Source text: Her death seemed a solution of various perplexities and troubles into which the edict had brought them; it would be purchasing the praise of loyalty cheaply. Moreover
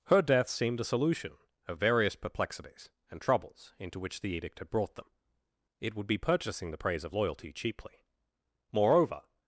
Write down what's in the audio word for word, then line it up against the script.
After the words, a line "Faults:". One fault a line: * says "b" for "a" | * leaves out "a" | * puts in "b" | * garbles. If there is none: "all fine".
Her death seemed a solution of various perplexities and troubles into which the edict had brought them; it would be purchasing the praise of loyalty cheaply. Moreover
Faults:
all fine